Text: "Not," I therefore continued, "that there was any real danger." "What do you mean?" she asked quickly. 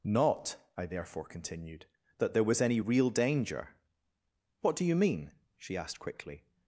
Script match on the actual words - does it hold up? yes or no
yes